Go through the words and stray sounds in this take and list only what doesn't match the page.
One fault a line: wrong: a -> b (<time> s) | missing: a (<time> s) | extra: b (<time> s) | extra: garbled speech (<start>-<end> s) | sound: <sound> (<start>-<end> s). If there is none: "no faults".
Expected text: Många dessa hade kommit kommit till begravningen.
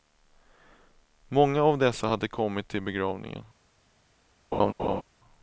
extra: av (1.6 s)
missing: kommit (2.7 s)
sound: laugh (4.5-5.0 s)